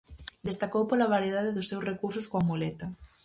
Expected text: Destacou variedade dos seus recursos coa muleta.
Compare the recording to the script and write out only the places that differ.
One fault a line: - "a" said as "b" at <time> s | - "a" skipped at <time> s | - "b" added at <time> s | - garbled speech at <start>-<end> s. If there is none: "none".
- "pola" added at 0.9 s